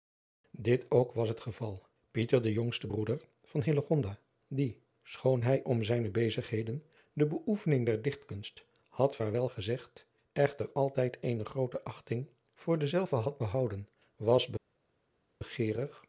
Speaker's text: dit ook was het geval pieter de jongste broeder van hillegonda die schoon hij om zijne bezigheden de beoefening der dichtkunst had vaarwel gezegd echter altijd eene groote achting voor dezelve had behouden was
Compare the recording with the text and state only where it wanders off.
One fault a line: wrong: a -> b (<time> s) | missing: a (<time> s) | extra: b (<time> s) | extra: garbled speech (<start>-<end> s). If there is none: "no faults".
no faults